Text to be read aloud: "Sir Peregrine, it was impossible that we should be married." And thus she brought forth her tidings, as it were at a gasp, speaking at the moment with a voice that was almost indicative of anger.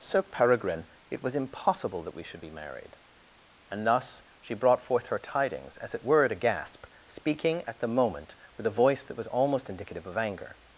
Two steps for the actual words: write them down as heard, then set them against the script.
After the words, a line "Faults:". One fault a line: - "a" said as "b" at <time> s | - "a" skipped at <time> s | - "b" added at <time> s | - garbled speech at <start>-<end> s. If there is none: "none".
"Sir Peregrine, it was impossible that we should be married." And thus she brought forth her tidings, as it were at a gasp, speaking at the moment with a voice that was almost indicative of anger.
Faults:
none